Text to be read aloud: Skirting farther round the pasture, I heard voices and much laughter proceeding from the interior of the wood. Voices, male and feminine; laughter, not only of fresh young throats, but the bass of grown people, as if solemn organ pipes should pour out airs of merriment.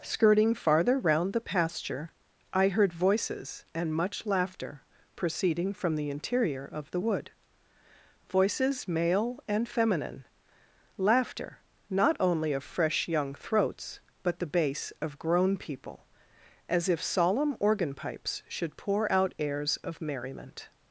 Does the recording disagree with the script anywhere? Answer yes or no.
no